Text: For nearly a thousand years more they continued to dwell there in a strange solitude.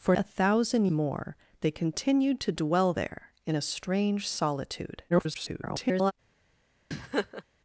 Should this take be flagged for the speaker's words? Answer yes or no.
yes